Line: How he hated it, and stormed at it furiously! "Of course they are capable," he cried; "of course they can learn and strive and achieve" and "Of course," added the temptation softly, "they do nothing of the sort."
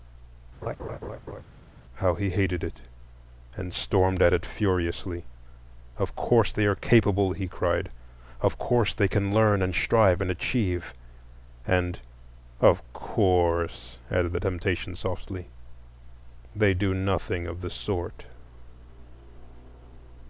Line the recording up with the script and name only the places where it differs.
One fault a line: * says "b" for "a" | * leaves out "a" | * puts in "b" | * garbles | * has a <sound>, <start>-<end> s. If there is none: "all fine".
* has a laugh, 0.6-1.4 s